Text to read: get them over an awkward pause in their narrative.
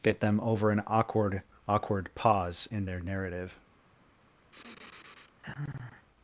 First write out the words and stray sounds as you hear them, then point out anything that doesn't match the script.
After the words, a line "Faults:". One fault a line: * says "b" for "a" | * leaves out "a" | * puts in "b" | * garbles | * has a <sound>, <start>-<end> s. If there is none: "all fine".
get them over an awkward awkward pause in their narrative.
Faults:
* puts in "awkward"
* has a sigh, 4.5-6.1 s